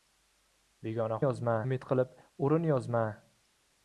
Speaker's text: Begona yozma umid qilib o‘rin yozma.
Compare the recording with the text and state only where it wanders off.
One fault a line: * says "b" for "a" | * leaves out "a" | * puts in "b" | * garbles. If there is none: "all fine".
all fine